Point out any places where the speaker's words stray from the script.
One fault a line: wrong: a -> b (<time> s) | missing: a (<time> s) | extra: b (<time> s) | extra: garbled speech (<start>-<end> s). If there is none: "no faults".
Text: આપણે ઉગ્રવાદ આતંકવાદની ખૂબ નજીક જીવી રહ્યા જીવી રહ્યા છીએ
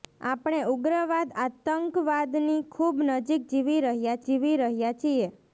no faults